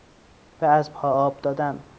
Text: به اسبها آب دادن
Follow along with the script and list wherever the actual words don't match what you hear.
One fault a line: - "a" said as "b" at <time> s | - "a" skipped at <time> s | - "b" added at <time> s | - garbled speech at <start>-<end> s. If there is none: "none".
none